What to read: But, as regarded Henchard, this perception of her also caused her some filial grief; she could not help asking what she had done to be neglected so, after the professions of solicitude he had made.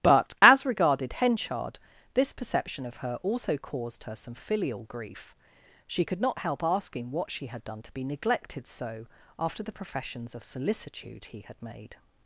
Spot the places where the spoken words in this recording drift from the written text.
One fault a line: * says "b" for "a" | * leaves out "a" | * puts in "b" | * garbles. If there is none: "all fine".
all fine